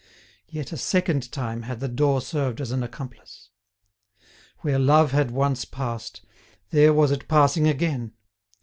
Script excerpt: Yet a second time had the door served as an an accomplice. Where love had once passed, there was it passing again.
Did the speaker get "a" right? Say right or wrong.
right